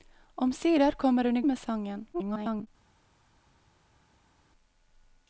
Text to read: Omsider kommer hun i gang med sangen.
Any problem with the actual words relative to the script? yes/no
yes